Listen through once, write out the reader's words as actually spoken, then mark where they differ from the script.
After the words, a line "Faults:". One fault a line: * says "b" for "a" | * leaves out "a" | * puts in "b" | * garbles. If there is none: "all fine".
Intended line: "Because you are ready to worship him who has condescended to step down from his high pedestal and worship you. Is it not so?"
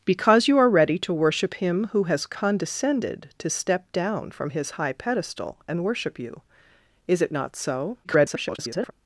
"Because you are ready to worship him who has condescended to step down from his high pedestal and worship you. Is it not so?" [garbled]
Faults:
* garbles